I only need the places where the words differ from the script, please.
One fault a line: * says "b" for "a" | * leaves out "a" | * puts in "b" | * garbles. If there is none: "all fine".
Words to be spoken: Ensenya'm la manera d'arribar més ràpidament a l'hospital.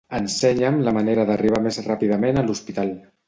all fine